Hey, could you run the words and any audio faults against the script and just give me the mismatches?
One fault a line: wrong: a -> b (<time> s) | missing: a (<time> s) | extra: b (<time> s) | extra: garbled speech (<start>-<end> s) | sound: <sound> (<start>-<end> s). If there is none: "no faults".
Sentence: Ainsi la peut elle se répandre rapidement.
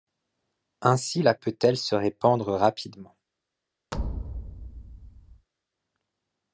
sound: thud (3.9-5.5 s)